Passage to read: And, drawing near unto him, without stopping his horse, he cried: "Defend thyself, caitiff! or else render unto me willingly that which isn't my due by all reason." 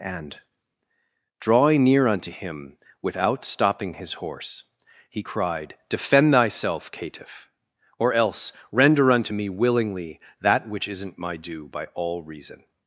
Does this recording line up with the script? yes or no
yes